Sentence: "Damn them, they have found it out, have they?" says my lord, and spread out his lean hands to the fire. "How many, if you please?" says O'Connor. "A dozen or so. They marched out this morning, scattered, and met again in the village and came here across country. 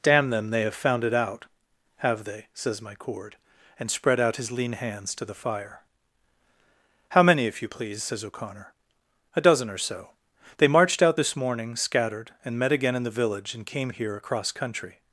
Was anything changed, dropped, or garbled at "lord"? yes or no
yes